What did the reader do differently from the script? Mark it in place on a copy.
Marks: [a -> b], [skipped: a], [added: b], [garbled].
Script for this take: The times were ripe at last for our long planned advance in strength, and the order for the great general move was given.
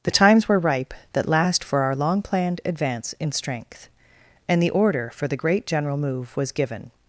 The times were ripe [at -> that] last for our long planned advance in strength, and the order for the great general move was given.